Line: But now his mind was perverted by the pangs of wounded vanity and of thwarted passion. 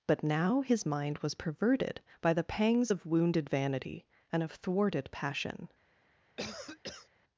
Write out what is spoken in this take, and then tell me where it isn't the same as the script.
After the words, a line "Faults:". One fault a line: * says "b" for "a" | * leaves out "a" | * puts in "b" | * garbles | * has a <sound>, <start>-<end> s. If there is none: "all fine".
But now his mind was perverted by the pangs of wounded vanity and of thwarted passion.
Faults:
* has a cough, 6.4-7.1 s